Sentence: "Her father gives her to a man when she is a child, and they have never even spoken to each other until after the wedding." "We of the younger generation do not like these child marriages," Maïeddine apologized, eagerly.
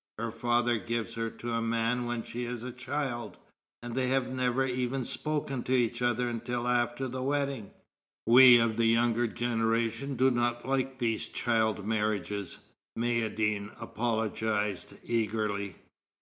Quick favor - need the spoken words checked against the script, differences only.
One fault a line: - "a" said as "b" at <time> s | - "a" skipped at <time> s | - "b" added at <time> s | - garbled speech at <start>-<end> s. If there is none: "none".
none